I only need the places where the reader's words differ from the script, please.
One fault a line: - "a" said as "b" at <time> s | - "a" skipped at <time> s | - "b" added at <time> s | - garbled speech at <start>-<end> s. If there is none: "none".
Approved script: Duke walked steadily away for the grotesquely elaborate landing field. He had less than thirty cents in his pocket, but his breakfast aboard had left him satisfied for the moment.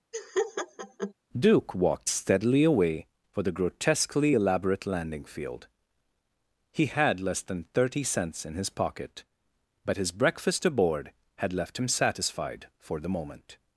none